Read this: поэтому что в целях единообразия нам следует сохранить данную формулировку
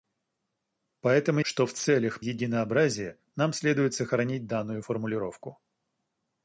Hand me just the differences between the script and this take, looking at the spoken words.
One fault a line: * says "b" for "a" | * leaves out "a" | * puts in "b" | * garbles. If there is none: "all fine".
all fine